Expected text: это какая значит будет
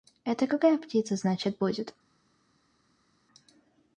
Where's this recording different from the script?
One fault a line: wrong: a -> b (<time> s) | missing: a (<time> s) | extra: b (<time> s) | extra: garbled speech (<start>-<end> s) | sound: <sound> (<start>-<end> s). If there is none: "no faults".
extra: птица (0.8 s)